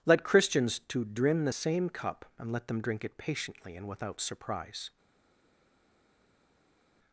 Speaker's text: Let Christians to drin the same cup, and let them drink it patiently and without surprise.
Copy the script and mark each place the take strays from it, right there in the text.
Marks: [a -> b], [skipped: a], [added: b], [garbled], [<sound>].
Let Christians to drin the same cup, and let them drink it patiently and without surprise.